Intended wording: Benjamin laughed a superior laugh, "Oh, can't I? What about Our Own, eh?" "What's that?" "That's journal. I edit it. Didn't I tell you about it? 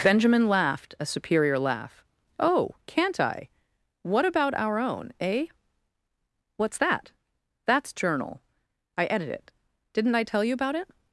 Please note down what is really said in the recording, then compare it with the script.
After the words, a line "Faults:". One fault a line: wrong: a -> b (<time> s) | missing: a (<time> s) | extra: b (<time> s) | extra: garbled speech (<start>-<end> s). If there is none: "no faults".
Benjamin laughed a superior laugh, "Oh, can't I? What about Our Own, eh?" "What's that?" "That's journal. I edit it. Didn't I tell you about it?
Faults:
no faults